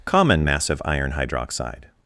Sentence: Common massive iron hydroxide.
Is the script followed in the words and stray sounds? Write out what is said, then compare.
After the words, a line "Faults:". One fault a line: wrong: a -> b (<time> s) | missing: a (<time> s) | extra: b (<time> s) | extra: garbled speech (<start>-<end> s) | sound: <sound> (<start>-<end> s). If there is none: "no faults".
Common massive iron hydroxide.
Faults:
no faults